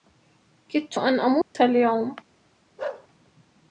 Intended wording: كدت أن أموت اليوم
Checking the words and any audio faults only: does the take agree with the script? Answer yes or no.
no